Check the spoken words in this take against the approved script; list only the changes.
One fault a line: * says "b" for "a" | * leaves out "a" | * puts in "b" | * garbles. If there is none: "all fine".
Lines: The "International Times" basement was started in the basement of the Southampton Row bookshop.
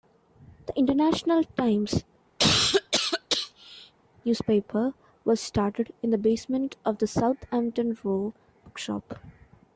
* says "newspaper" for "basement"